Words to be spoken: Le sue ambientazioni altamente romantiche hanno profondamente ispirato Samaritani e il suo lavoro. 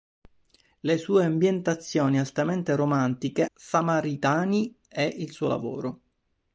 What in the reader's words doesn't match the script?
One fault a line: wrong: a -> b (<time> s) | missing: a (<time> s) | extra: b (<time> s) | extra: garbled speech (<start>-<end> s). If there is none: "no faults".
missing: hanno profondamente ispirato (3.5 s)